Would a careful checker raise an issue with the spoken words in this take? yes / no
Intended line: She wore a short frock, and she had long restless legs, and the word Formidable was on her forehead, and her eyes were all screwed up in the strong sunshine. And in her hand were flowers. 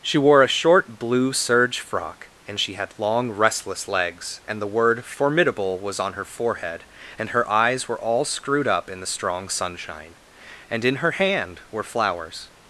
yes